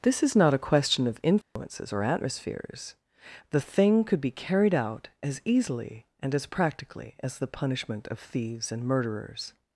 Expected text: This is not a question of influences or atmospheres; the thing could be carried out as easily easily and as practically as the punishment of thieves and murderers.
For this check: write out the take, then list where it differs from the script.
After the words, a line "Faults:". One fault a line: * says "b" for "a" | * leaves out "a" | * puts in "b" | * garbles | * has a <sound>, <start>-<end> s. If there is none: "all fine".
This is not a question of influences or atmospheres; the thing could be carried out as easily and as practically as the punishment of thieves and murderers.
Faults:
* has a dropout, 1.4-1.6 s
* leaves out "easily"